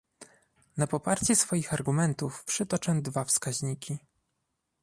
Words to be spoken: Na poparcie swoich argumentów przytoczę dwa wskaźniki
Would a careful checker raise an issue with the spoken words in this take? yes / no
no